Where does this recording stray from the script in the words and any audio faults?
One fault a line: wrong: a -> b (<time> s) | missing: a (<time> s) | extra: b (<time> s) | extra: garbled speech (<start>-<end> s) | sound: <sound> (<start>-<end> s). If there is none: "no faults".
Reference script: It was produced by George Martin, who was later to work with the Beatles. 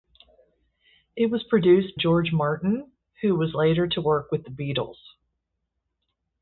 missing: by (1.9 s)